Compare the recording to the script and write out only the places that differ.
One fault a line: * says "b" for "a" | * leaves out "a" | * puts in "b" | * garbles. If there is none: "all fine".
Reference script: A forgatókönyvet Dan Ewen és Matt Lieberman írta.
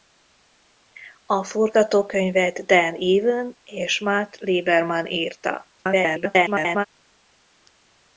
* garbles